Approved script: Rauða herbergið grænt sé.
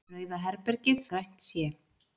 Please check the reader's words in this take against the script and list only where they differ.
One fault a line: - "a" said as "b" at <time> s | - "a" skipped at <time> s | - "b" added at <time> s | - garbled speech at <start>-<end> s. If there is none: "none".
none